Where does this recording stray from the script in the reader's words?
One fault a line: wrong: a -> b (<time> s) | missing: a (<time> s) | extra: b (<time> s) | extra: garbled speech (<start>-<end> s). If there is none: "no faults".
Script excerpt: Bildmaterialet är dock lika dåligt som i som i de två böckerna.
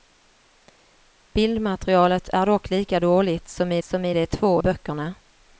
no faults